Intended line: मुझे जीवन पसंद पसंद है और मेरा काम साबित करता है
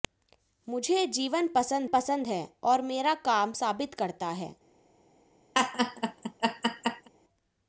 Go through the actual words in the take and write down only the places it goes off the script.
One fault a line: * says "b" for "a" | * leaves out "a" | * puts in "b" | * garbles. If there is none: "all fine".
all fine